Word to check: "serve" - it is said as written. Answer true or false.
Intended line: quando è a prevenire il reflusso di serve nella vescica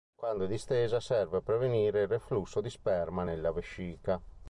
false